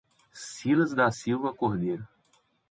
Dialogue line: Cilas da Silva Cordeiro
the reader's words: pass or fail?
pass